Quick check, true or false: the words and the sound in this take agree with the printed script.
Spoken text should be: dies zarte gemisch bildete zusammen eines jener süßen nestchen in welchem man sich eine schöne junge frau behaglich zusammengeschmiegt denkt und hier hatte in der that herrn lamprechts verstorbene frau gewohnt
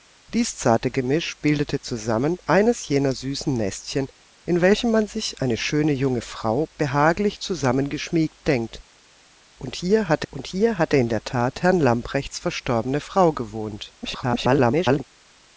false